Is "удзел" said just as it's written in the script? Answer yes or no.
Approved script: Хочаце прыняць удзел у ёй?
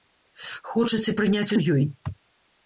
no